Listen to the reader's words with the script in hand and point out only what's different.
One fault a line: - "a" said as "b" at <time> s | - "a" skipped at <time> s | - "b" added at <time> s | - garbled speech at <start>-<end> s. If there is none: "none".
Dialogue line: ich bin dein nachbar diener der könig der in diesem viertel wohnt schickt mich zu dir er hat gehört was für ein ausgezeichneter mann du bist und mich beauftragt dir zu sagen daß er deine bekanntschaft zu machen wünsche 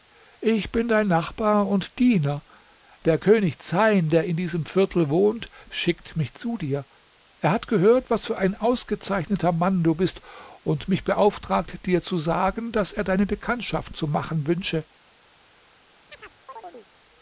- "und" added at 1.7 s
- "zeyn" added at 3.6 s